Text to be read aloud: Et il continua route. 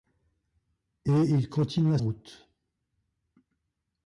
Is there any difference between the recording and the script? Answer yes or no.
no